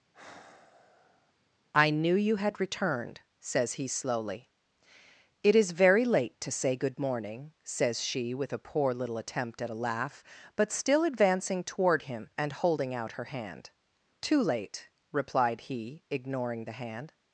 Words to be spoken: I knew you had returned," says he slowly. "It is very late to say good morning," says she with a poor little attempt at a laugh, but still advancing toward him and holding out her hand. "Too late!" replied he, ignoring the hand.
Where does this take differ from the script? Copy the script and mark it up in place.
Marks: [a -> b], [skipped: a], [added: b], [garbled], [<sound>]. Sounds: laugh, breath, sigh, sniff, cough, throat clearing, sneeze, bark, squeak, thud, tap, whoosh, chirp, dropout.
[sigh] I knew you had returned," says he slowly. "It is very late to say good morning," says she with a poor little attempt at a laugh, but still advancing toward him and holding out her hand. "Too late!" replied he, ignoring the hand.